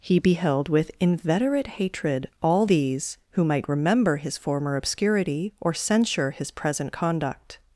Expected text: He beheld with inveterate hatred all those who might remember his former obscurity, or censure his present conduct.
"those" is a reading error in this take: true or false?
true